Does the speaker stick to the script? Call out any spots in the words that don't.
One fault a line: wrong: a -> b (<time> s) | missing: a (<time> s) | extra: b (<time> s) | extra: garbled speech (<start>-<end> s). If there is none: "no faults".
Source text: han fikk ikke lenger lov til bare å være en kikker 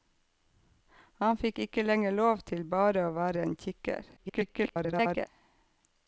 extra: garbled speech (4.2-5.3 s)